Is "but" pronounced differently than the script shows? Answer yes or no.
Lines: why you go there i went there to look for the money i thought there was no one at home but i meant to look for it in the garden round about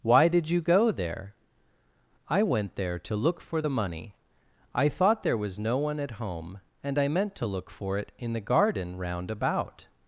yes